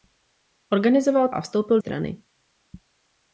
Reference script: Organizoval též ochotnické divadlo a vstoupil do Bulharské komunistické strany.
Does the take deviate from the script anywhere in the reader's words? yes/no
yes